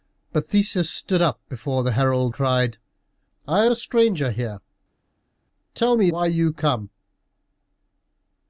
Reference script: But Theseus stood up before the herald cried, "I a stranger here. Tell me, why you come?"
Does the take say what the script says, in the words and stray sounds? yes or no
yes